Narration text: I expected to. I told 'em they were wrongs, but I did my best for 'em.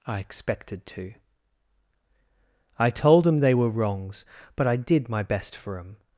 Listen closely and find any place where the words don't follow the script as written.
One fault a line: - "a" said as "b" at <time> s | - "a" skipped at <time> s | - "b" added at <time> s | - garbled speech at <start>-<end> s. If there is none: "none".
none